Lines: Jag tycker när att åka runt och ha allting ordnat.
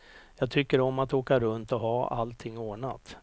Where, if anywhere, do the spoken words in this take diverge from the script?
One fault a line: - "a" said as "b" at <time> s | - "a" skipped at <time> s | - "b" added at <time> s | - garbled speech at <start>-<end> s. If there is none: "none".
- "när" said as "om" at 0.8 s